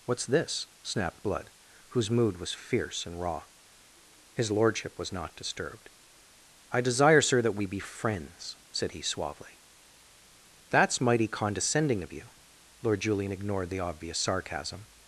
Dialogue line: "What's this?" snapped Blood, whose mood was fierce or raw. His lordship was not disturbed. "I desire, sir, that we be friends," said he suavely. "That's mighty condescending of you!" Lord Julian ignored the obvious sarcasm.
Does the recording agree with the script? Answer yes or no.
no